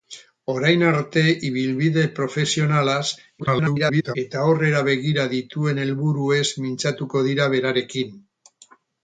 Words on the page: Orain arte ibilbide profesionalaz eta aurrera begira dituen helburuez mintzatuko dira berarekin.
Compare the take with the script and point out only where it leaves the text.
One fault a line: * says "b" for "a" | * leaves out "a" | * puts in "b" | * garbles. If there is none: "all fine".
* garbles